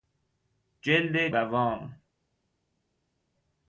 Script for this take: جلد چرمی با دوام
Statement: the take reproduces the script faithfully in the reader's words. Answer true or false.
false